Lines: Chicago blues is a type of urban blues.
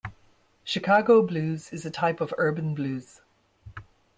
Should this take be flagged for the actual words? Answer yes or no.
no